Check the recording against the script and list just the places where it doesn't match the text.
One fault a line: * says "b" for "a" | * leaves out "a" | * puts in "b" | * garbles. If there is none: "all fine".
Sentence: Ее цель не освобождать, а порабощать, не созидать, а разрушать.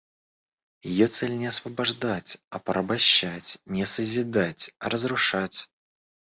all fine